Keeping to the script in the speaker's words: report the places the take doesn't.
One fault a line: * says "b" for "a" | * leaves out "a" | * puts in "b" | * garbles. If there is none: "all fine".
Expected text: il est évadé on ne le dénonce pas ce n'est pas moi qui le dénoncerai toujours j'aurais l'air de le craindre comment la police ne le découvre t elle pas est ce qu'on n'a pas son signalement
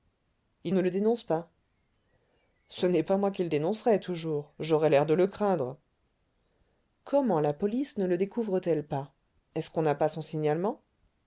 * leaves out "est évadé on"